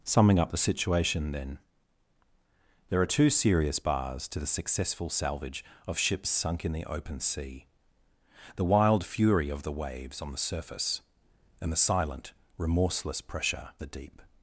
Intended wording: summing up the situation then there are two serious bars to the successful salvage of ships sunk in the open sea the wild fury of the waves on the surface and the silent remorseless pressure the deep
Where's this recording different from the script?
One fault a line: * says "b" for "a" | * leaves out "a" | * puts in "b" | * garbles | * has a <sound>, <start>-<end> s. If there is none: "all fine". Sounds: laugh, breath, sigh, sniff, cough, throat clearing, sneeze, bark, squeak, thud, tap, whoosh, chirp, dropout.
all fine